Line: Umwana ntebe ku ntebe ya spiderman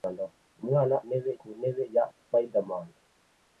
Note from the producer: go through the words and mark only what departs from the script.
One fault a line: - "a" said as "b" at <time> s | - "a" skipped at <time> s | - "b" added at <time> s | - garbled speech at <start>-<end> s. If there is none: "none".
none